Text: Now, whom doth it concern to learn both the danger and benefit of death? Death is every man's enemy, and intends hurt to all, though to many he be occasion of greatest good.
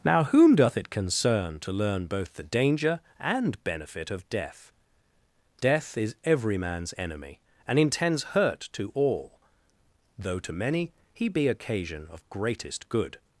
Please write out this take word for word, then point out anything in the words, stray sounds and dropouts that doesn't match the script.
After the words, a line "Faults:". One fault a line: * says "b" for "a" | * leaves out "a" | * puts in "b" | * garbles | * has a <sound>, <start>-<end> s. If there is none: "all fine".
Now, whom doth it concern to learn both the danger and benefit of death? Death is every man's enemy, and intends hurt to all, though to many he be occasion of greatest good.
Faults:
all fine